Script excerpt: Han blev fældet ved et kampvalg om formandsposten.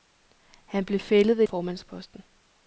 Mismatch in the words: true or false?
true